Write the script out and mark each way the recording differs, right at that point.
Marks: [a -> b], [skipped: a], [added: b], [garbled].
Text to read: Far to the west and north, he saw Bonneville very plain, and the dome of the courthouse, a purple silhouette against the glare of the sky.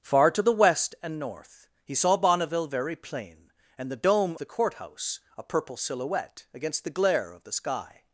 Far to the west and north, he saw Bonneville very plain, and the dome [skipped: of] the courthouse, a purple silhouette against the glare of the sky.